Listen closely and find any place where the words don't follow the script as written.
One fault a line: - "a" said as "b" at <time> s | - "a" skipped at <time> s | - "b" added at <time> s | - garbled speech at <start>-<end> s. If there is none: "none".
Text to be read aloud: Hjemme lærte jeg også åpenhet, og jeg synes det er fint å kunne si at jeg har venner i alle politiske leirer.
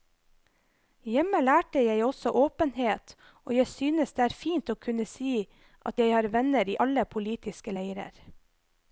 none